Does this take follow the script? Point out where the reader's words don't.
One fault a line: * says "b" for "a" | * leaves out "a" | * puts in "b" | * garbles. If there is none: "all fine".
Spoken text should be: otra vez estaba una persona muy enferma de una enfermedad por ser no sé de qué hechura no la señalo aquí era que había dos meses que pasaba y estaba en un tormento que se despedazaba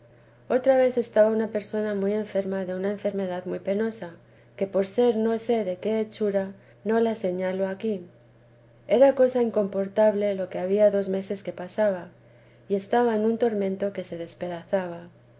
* puts in "muy penosa que"
* puts in "cosa incomportable lo"